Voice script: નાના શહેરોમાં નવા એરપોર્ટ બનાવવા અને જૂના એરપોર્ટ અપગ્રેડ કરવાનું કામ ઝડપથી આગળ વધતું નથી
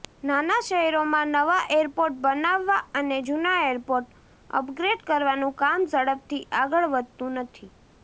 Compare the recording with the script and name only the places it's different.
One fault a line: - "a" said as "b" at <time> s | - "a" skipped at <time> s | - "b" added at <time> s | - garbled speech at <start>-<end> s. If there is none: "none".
none